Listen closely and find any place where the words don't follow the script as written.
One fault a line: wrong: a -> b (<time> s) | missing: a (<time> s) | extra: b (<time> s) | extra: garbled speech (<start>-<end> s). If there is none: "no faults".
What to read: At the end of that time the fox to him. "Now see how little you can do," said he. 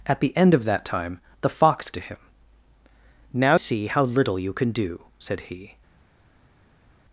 no faults